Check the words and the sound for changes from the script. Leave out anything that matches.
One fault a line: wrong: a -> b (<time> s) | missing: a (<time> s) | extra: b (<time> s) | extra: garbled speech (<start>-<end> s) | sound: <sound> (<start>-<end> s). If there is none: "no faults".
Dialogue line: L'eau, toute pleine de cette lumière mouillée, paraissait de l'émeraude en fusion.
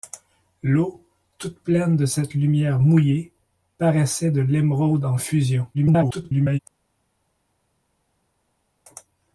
extra: garbled speech (5.7-6.6 s)